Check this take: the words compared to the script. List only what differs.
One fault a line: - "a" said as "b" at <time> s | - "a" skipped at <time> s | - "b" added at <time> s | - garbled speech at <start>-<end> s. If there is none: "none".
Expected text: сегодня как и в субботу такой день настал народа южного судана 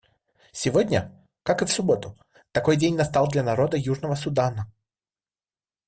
- "для" added at 3.3 s